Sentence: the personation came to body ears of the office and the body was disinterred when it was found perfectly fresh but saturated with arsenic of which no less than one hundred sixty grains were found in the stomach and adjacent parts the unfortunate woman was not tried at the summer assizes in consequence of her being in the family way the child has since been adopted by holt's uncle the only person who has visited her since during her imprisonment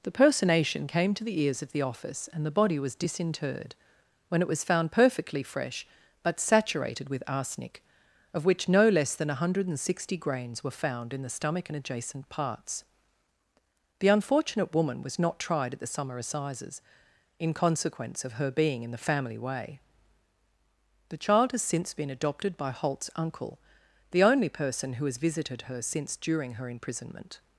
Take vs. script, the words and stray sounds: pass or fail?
fail